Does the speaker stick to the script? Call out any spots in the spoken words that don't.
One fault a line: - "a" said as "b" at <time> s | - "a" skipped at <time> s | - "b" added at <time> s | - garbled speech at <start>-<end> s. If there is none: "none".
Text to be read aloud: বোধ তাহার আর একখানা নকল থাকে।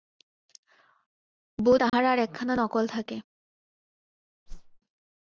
none